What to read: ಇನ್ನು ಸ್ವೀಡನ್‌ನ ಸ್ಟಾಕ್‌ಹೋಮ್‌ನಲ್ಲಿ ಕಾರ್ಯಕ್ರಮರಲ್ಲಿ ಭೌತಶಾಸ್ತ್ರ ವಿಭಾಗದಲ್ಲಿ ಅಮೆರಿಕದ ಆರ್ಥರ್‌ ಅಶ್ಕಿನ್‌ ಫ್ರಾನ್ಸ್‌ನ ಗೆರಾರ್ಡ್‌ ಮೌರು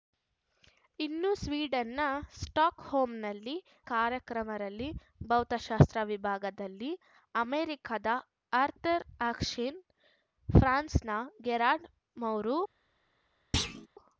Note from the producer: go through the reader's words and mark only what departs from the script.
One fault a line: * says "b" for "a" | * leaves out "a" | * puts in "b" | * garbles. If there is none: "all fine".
all fine